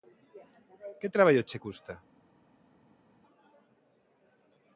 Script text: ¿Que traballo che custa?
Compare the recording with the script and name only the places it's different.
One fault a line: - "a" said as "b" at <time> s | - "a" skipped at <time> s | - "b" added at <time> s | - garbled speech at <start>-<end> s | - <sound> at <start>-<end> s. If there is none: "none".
none